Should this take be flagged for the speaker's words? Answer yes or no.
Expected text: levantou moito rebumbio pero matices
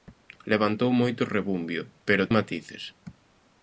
no